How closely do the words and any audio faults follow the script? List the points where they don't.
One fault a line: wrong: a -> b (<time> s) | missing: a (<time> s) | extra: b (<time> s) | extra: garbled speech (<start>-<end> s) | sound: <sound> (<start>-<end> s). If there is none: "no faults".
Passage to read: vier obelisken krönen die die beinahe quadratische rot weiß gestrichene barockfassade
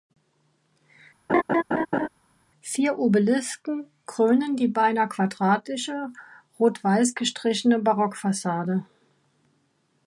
sound: laugh (1.3-2.1 s)
missing: die (4.7 s)